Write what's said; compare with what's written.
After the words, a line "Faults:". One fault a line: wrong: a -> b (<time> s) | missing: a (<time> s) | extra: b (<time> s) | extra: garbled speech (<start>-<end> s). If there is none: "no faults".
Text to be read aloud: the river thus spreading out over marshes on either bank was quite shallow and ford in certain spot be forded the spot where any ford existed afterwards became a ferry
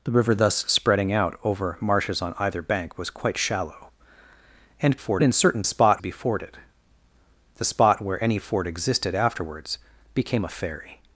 the river thus spreading out over marshes on either bank was quite shallow and ford in certain spot be forded the spot where any ford existed afterwards became a ferry
Faults:
no faults